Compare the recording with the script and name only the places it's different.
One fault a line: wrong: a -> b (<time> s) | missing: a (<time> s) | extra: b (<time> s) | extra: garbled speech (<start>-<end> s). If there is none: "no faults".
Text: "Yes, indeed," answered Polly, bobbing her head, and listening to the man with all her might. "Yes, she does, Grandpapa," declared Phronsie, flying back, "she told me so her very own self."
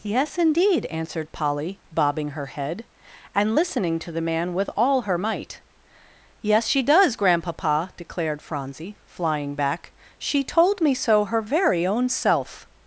no faults